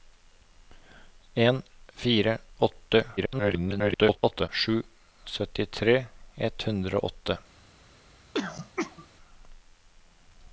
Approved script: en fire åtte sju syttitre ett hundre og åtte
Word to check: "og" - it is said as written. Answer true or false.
true